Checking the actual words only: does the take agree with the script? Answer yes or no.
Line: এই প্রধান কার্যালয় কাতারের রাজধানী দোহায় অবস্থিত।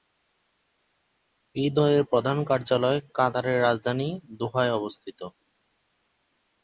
no